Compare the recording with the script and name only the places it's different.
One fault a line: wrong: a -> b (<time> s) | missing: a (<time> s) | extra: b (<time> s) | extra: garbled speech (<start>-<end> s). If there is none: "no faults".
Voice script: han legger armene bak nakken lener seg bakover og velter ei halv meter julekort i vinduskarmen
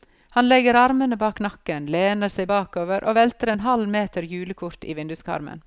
wrong: ei -> en (3.5 s)